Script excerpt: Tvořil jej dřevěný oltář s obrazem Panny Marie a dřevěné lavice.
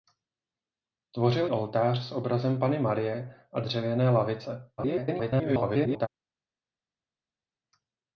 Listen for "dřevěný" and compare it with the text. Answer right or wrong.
wrong